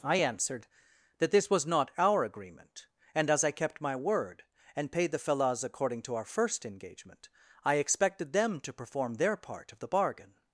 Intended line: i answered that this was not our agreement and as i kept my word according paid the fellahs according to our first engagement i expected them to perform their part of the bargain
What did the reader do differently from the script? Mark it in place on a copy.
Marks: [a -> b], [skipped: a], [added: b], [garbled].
i answered that this was not our agreement and as i kept my word [according -> and] paid the fellahs according to our first engagement i expected them to perform their part of the bargain